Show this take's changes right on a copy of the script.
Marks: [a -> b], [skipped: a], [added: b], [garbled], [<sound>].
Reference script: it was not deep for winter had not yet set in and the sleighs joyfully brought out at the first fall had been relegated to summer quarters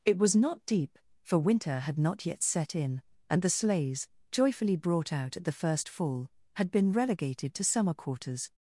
it was not deep for winter had not yet set in and the sleighs joyfully brought out at the first fall had been relegated to summer quarters